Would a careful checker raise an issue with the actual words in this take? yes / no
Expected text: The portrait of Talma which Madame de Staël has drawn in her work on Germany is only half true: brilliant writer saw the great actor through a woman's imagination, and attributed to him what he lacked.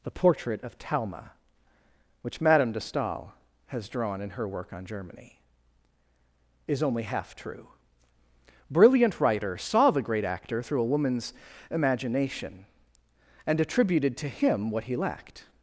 no